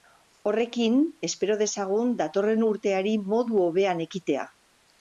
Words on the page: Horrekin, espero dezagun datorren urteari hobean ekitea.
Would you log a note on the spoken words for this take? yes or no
yes